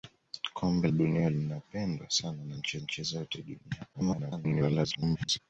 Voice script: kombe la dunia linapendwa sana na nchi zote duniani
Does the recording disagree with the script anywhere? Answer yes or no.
yes